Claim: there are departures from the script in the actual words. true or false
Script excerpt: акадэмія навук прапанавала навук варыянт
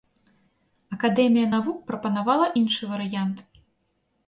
true